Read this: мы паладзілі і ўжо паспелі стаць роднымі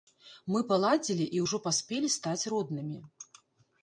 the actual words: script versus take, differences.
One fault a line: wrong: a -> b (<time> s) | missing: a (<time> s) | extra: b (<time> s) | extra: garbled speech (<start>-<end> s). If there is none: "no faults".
no faults